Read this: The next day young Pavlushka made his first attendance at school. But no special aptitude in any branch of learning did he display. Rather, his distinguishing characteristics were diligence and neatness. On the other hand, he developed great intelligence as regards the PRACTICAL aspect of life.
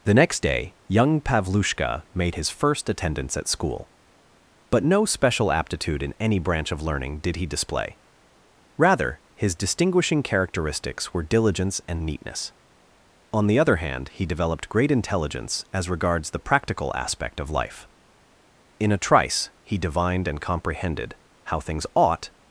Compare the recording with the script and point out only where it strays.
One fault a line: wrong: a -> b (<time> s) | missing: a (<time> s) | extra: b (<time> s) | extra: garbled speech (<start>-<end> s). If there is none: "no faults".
extra: In a trice he divined and comprehended how things ought (18.8 s)